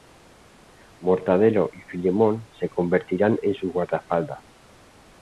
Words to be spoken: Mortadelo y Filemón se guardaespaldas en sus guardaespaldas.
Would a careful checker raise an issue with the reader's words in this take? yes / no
yes